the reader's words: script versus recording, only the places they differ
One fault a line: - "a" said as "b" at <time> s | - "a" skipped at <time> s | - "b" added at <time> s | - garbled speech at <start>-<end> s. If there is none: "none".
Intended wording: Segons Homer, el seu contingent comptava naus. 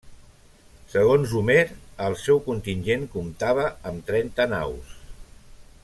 - "amb trenta" added at 3.9 s